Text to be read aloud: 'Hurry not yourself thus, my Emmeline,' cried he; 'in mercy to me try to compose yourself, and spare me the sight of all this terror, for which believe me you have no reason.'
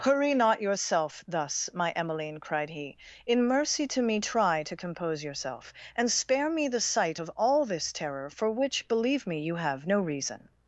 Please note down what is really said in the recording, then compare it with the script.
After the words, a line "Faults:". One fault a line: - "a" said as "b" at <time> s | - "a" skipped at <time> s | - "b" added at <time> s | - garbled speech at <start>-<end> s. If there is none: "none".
'Hurry not yourself thus, my Emmeline,' cried he; 'in mercy to me try to compose yourself, and spare me the sight of all this terror, for which believe me you have no reason.'
Faults:
none